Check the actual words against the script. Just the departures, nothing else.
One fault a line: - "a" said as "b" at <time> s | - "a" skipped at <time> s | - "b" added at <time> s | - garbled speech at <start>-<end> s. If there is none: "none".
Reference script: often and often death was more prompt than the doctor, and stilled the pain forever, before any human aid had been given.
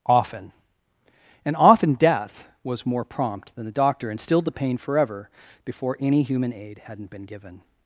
- "had" said as "hadn't" at 6.8 s